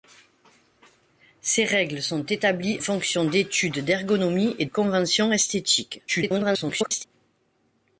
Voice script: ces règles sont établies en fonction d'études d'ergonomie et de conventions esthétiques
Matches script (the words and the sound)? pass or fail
fail